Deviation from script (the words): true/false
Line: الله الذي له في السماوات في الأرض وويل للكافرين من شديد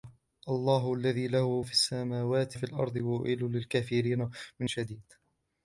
false